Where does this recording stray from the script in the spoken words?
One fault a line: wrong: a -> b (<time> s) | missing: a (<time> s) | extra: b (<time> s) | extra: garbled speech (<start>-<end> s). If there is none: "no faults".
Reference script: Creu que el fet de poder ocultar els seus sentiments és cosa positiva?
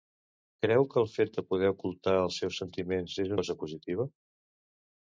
no faults